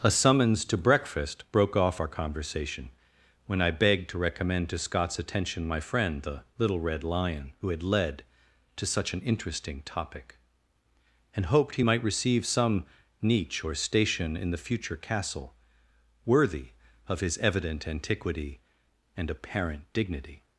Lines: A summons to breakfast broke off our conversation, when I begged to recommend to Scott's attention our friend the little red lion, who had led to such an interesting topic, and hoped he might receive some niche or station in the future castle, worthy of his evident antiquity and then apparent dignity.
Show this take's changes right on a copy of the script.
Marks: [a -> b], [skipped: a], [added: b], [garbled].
A summons to breakfast broke off our conversation, when I begged to recommend to Scott's attention [our -> my] friend the little red lion, who had led to such an interesting topic, and hoped he might receive some niche or station in the future castle, worthy of his evident antiquity and [skipped: then] apparent dignity.